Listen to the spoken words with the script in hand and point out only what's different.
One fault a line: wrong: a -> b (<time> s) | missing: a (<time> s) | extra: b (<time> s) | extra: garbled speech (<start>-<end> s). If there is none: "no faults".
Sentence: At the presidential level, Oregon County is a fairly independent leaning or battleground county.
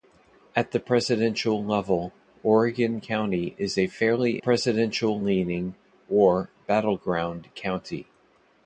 wrong: independent -> presidential (4.4 s)